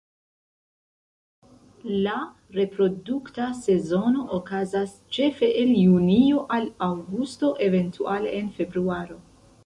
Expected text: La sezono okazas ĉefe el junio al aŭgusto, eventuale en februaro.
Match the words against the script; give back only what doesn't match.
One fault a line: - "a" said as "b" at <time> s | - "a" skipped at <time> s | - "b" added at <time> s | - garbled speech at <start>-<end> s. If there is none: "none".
- "reprodukta" added at 2.5 s